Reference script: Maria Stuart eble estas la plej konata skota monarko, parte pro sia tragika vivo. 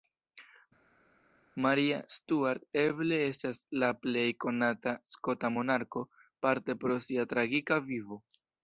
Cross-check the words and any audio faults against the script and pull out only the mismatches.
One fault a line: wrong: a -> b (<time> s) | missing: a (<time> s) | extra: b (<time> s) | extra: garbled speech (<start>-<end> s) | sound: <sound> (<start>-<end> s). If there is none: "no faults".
no faults